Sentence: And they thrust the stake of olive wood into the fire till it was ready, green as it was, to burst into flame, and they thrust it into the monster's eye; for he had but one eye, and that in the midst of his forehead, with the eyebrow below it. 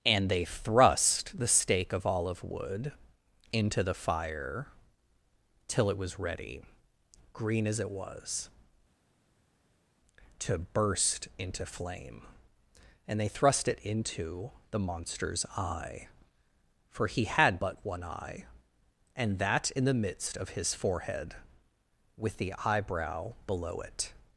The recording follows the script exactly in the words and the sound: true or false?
true